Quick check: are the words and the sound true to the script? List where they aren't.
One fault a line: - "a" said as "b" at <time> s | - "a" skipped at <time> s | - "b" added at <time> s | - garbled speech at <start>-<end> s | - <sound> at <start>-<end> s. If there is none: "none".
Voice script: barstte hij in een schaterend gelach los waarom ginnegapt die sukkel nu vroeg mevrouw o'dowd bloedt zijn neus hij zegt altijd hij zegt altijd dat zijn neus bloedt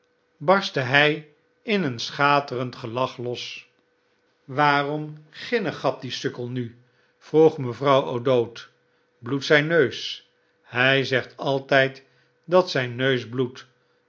- "hij zegt altijd" skipped at 12.0 s